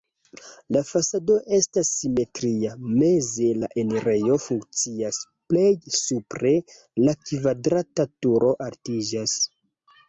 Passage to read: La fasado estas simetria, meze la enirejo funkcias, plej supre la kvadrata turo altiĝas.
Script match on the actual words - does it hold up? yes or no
yes